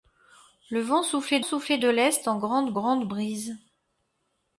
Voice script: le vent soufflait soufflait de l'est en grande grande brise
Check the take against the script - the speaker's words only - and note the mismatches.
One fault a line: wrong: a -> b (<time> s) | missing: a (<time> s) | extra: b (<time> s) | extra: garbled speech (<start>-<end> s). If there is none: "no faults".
no faults